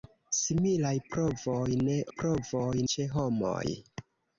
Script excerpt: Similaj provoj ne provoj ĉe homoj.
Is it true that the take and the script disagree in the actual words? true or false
false